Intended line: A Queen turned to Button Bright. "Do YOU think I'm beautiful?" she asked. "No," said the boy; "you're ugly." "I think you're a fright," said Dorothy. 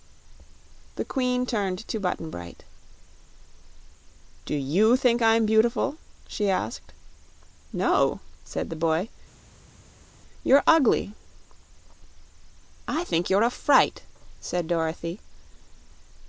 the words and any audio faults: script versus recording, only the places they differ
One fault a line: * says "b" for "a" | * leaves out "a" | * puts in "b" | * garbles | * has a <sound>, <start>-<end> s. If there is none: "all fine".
* says "The" for "A"